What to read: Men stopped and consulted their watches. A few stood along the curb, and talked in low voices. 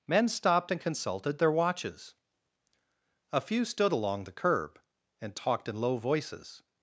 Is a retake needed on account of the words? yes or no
no